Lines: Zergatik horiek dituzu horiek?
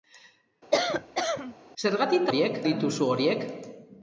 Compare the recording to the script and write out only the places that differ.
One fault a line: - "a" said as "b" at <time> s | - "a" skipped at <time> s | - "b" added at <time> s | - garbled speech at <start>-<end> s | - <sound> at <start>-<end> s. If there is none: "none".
- cough at 0.7-1.5 s